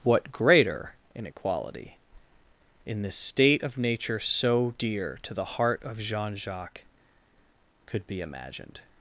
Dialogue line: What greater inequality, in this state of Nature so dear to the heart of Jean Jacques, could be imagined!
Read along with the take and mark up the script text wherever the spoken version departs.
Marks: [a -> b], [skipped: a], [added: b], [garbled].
What greater inequality, in this state of Nature so dear to the heart of Jean Jacques, could be imagined!